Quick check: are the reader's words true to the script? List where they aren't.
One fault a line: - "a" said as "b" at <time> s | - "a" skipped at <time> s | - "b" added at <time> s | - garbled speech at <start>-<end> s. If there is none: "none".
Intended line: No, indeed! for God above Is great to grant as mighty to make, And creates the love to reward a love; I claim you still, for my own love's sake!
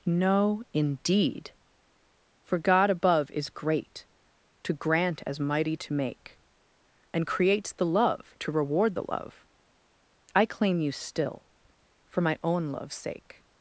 - "a" said as "the" at 8.9 s